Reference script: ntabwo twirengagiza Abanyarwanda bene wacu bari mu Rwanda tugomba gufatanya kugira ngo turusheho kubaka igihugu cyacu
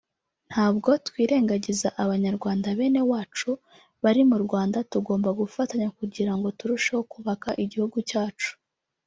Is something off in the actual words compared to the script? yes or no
no